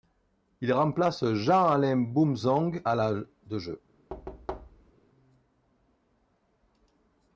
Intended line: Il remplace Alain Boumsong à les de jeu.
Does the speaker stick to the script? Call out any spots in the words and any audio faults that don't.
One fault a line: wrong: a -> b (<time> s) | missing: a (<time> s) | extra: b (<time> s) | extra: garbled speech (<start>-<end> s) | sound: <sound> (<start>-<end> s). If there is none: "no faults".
extra: Jean (1.3 s)
wrong: les -> la (2.9 s)
sound: thud (4.1-4.9 s)